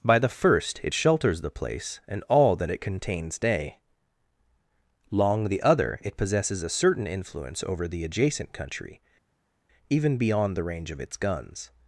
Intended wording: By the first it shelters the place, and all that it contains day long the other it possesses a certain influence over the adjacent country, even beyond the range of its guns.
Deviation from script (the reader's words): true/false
false